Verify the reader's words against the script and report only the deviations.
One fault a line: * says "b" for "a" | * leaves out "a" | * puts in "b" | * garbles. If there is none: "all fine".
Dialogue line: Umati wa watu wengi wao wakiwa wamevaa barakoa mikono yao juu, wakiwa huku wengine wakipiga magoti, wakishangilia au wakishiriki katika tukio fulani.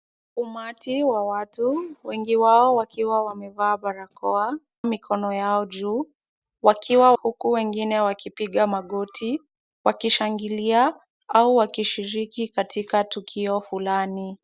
all fine